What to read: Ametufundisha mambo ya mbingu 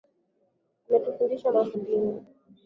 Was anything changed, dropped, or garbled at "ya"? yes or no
yes